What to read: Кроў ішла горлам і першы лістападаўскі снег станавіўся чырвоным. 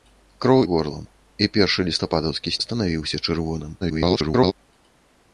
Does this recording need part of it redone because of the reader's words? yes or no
yes